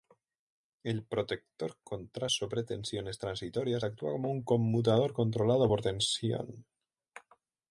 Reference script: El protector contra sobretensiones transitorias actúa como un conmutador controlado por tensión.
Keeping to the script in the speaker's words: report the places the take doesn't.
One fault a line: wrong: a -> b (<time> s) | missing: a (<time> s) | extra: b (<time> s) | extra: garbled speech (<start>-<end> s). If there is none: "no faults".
no faults